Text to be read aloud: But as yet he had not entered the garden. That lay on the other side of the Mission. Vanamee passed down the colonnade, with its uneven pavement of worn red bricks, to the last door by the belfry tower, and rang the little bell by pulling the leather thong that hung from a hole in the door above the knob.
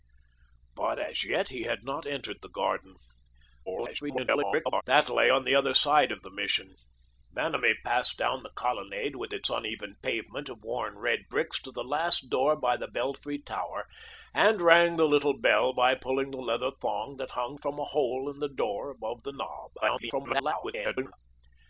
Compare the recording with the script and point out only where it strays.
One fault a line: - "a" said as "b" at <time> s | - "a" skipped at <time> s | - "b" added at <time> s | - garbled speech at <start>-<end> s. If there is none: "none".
- garbled speech at 3.7-4.8 s
- garbled speech at 19.8-21.1 s